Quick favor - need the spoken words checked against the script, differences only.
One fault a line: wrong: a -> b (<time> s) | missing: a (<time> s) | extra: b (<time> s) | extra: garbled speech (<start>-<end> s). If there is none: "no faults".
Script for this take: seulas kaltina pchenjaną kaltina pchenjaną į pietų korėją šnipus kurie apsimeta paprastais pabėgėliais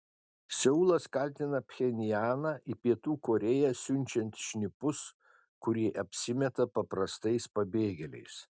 missing: kaltina pchenjaną (2.5 s)
extra: siunčiant (3.8 s)